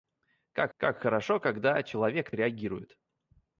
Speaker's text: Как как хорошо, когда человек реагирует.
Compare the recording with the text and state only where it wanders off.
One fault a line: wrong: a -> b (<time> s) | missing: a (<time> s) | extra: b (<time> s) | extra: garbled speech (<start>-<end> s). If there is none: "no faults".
no faults